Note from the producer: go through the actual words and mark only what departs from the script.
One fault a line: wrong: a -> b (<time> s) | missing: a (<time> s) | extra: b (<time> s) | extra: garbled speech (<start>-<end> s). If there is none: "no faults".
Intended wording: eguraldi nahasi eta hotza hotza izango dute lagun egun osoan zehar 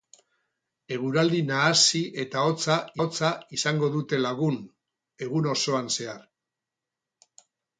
no faults